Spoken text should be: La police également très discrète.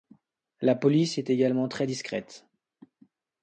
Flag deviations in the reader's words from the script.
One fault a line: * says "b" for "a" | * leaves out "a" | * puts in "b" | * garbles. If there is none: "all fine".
* puts in "est"